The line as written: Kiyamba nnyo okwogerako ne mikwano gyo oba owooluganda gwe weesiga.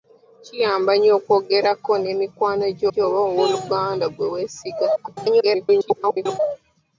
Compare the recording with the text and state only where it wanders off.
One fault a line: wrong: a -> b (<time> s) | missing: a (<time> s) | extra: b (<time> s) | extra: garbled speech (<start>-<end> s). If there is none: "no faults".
extra: gyo (2.9 s)
extra: garbled speech (5.0-6.4 s)